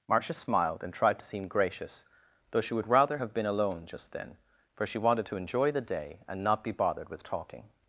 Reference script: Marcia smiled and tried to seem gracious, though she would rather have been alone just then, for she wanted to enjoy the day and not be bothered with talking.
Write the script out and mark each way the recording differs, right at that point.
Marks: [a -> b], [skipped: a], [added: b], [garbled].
Marcia smiled and tried to seem gracious, though she would rather have been alone just then, for she wanted to enjoy the day and not be bothered with talking.